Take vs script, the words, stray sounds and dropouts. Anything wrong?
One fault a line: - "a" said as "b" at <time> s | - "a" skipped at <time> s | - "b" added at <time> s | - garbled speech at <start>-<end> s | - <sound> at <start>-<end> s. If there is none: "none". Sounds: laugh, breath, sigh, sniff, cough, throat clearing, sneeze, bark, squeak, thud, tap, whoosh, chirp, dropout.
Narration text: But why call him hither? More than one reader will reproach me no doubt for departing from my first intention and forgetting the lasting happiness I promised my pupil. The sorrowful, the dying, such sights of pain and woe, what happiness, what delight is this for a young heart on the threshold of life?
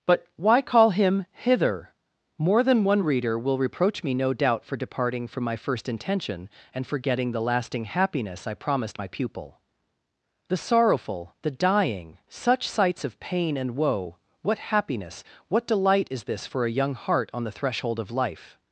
none